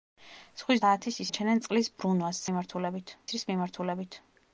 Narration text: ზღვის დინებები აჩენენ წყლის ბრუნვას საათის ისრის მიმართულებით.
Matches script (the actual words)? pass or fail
fail